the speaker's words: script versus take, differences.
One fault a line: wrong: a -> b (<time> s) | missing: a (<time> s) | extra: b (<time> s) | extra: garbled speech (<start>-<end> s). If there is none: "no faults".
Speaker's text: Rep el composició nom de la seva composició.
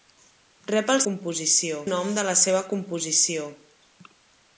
no faults